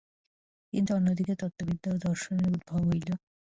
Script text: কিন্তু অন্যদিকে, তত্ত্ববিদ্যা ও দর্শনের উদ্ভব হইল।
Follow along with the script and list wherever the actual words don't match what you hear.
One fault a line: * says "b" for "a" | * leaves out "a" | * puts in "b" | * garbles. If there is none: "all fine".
all fine